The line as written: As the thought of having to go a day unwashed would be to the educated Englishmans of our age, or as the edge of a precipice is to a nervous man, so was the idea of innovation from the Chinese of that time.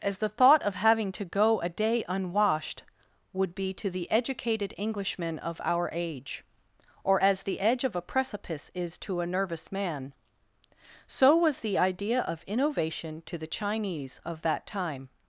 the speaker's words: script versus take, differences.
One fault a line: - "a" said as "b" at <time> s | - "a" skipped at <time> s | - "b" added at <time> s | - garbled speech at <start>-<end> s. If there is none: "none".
- "Englishmans" said as "Englishman" at 4.8 s
- "from" said as "to" at 13.3 s